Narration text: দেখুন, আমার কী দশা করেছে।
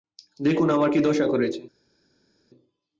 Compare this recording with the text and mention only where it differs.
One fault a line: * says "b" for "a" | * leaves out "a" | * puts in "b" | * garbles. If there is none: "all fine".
all fine